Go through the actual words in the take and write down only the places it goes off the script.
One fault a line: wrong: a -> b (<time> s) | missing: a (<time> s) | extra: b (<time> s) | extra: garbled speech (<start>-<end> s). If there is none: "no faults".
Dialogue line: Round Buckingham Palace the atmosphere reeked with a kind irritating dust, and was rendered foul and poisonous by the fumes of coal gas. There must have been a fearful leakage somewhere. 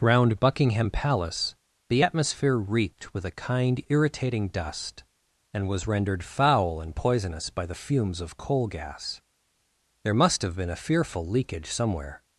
no faults